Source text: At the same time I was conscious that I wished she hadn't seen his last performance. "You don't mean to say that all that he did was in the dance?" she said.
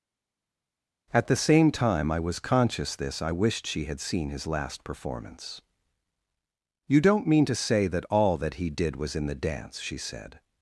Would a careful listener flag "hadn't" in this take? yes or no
yes